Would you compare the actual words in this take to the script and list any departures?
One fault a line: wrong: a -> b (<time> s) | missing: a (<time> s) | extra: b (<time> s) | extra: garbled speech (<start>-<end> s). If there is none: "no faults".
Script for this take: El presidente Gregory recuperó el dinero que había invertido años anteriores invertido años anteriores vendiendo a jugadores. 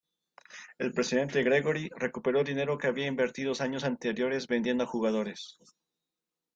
missing: invertido años anteriores (4.5 s)